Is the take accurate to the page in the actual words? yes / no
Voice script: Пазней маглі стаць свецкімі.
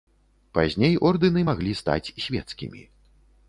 no